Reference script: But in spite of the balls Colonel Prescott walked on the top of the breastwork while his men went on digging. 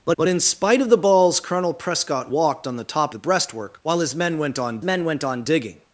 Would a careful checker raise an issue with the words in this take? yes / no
yes